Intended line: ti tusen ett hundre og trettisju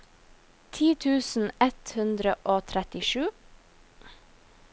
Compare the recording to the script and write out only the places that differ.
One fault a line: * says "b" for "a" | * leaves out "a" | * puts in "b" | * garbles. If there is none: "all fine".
all fine